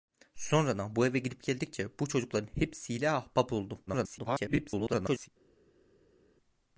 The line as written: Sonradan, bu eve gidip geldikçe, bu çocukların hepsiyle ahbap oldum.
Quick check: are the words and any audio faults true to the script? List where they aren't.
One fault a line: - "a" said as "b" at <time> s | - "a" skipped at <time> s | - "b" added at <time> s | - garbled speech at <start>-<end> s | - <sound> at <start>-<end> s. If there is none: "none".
- garbled speech at 3.9-5.3 s